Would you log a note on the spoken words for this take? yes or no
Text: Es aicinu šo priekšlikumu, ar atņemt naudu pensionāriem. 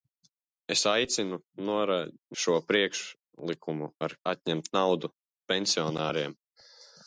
no